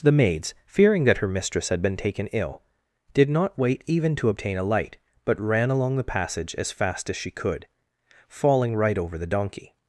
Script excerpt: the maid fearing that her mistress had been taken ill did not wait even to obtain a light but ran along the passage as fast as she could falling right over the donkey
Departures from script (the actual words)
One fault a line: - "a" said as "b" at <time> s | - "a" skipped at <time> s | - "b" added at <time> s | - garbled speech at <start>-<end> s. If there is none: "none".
- "maid" said as "maids" at 0.1 s